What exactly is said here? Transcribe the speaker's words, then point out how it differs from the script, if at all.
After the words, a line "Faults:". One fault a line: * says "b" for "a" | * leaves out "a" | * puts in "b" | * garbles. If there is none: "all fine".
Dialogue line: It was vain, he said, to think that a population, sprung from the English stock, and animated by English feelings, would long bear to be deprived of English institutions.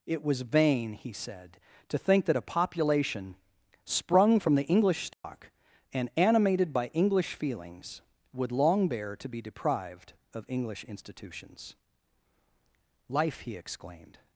It was vain, he said, to think that a population, sprung from the English stock, and animated by English feelings, would long bear to be deprived of English institutions. Life, he exclaimed
Faults:
* puts in "Life he exclaimed"